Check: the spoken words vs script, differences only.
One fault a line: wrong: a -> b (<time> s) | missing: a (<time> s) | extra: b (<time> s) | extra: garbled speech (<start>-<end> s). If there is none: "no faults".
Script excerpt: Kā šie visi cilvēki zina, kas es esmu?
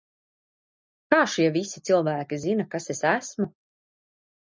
no faults